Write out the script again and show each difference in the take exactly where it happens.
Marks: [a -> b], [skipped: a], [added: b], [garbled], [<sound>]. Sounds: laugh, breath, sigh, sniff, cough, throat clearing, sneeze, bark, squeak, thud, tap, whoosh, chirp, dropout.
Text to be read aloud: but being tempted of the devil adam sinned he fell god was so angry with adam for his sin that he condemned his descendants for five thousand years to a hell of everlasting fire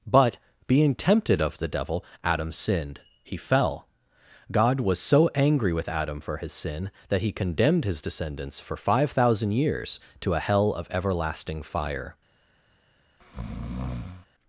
but being tempted of the devil adam sinned he fell god was so angry with adam for his sin that he condemned his descendants for five thousand years to a hell of everlasting fire [breath]